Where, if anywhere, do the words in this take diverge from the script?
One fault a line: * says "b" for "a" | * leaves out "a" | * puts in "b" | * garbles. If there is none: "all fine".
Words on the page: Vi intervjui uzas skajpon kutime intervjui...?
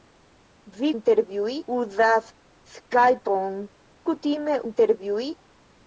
all fine